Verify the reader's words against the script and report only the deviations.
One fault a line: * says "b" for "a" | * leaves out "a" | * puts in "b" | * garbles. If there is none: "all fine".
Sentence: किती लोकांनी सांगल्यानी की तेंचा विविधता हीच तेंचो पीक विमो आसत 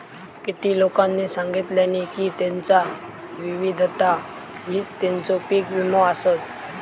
all fine